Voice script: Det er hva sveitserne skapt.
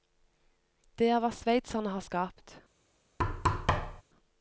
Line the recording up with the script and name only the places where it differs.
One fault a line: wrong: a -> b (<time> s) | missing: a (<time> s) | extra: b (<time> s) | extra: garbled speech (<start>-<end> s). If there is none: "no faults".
extra: har (1.9 s)